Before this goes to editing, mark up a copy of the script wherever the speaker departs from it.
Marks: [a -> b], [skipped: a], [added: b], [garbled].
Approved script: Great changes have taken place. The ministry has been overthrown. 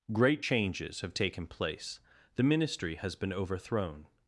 Great changes have taken place. The ministry has been overthrown.